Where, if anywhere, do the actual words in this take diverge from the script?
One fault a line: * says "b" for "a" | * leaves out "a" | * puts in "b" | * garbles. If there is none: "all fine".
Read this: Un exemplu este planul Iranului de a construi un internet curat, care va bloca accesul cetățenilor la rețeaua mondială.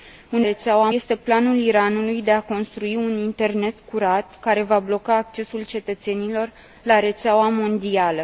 * says "rețeaua" for "exemplu"